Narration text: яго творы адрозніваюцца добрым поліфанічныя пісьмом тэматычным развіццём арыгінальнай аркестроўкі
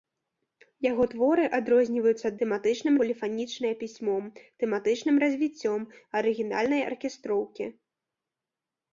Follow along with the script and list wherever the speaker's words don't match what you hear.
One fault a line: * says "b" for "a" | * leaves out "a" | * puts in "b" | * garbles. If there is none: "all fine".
* says "тэматычным" for "добрым"